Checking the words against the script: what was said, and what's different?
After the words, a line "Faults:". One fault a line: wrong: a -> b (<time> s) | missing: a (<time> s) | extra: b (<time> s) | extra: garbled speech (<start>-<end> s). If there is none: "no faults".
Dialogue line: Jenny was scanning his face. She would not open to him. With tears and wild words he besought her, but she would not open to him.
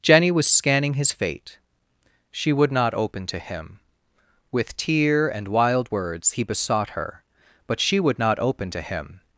Jenny was scanning his fate. She would not open to him. With tear and wild words he besought her, but she would not open to him.
Faults:
wrong: face -> fate (1.1 s)
wrong: tears -> tear (4.8 s)